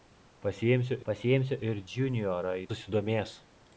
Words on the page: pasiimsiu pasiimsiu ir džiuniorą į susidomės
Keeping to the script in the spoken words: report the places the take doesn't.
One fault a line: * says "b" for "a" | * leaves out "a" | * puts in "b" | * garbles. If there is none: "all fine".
all fine